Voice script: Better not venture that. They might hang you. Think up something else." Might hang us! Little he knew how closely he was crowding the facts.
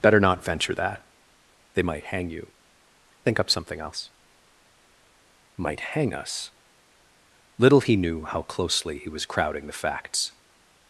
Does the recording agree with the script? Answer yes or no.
yes